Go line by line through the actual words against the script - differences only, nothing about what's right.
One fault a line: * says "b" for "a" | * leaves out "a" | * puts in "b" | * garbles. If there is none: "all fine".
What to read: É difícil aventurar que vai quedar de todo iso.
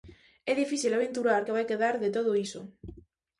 all fine